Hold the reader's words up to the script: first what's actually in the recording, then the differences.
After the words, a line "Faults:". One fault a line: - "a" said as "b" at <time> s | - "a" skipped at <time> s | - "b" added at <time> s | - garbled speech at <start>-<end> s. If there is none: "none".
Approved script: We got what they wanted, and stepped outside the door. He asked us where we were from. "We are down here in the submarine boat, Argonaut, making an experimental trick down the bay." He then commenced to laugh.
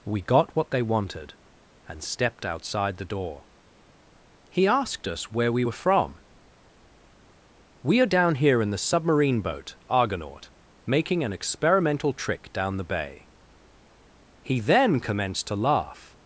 We got what they wanted, and stepped outside the door. He asked us where we were from. "We are down here in the submarine boat, Argonaut, making an experimental trick down the bay." He then commenced to laugh.
Faults:
none